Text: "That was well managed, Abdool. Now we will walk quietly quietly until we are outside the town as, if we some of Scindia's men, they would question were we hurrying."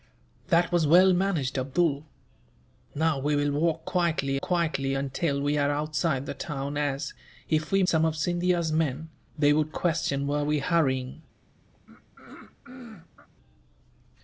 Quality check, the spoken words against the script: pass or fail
pass